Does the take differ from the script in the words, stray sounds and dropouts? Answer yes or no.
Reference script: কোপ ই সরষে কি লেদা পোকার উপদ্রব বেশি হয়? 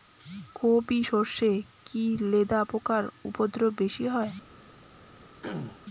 yes